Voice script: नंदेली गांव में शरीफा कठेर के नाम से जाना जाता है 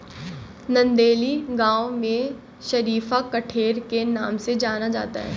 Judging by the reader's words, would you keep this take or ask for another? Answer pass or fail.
pass